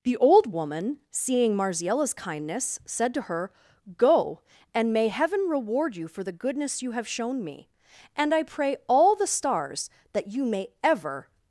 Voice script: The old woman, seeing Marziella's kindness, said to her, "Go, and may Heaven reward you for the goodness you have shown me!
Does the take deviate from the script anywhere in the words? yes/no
yes